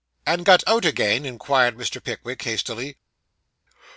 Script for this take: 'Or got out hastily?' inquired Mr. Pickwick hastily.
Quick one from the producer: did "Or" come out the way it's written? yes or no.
no